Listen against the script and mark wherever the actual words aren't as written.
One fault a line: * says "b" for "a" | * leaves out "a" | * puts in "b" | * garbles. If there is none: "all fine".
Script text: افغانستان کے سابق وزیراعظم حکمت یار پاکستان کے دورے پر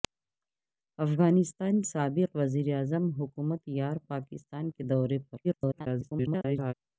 * leaves out "کے"
* garbles